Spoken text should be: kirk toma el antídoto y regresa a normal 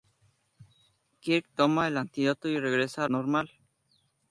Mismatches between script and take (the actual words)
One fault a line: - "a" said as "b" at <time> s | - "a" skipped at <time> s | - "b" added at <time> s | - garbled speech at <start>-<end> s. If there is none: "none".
none